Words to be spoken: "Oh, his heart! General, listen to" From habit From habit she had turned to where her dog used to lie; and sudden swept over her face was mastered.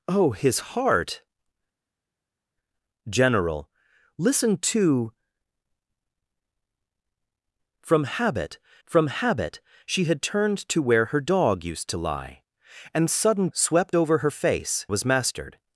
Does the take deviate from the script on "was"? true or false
false